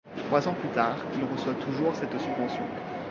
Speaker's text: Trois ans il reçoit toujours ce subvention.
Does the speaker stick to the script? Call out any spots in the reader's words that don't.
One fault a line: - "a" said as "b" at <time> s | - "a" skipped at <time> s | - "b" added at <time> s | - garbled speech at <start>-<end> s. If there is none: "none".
- "plus tard" added at 0.6 s
- "ce" said as "cette" at 1.9 s